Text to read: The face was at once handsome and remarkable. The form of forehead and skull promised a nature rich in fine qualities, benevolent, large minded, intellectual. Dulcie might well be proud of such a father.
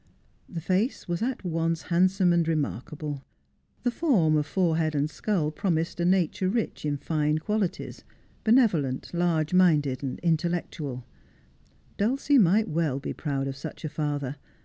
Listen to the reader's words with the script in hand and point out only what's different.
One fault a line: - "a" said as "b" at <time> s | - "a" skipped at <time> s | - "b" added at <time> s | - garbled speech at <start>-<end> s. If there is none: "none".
none